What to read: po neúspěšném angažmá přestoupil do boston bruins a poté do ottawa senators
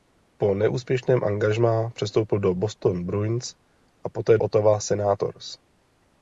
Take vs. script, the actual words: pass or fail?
fail